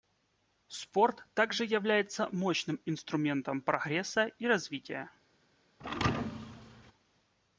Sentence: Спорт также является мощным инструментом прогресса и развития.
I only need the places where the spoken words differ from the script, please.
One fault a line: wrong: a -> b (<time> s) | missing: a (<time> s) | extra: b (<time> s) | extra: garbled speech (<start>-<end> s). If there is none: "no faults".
no faults